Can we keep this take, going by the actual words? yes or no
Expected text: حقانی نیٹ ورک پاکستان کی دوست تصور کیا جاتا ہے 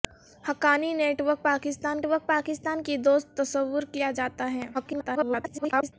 no